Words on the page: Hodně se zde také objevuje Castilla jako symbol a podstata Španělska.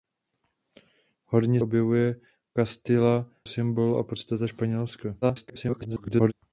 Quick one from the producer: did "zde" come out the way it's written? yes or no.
no